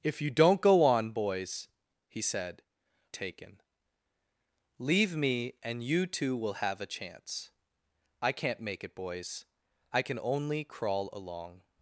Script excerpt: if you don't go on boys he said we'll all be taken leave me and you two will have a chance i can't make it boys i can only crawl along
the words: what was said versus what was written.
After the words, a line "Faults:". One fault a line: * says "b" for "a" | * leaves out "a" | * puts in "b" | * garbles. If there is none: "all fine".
if you don't go on boys he said taken leave me and you two will have a chance i can't make it boys i can only crawl along
Faults:
* leaves out "we'll all be"